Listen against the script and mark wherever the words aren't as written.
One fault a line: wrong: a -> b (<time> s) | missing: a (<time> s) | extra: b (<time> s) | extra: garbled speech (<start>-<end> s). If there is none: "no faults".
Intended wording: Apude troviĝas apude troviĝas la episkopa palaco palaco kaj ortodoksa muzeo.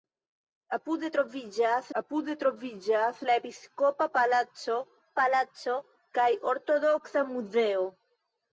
no faults